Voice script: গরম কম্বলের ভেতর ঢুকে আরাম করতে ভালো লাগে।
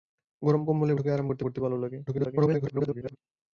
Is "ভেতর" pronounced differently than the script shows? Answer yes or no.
yes